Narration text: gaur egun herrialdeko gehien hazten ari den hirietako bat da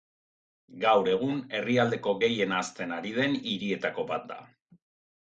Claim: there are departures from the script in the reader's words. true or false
false